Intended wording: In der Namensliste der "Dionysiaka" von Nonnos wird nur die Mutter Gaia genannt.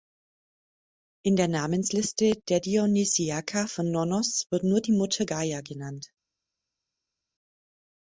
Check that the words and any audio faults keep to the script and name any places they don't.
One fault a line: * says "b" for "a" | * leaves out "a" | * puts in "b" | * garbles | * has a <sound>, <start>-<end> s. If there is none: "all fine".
all fine